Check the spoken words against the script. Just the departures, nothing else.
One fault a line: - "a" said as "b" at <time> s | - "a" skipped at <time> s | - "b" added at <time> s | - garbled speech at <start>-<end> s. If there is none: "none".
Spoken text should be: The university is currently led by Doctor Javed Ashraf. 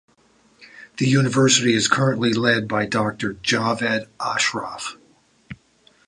none